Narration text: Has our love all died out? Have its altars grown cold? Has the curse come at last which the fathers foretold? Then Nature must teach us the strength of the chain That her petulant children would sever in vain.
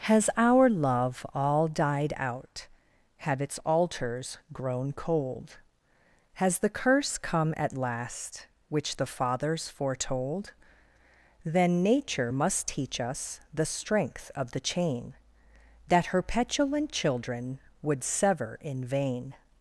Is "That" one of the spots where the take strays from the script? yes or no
no